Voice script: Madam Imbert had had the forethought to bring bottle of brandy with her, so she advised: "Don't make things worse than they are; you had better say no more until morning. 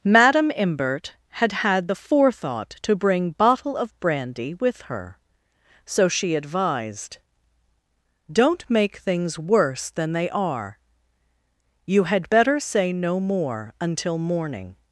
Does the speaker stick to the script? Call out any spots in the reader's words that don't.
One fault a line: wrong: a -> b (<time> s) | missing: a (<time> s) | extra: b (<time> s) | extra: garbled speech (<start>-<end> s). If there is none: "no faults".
no faults